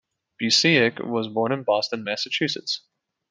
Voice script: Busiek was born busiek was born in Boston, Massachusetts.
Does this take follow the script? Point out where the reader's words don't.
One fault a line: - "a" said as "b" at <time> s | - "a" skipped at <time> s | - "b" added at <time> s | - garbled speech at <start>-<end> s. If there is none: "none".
- "busiek was born" skipped at 1.5 s